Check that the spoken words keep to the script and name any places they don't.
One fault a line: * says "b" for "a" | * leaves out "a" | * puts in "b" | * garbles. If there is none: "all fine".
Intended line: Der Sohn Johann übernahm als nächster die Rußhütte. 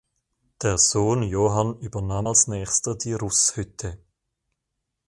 all fine